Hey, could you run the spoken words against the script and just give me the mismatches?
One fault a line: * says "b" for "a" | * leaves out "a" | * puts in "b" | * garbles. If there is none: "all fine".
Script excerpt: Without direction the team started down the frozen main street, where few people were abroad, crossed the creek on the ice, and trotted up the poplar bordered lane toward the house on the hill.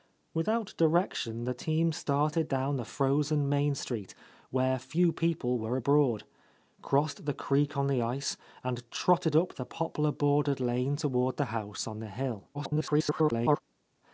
* garbles